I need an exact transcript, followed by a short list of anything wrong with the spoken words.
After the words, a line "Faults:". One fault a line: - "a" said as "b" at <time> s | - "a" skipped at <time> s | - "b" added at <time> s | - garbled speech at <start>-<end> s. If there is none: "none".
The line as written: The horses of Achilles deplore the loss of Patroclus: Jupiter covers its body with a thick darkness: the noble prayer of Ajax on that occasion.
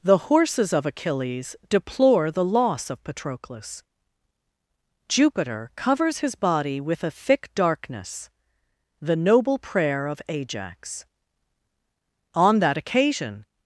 The horses of Achilles deplore the loss of Patroclus: Jupiter covers his body with a thick darkness: the noble prayer of Ajax on that occasion.
Faults:
- "its" said as "his" at 6.2 s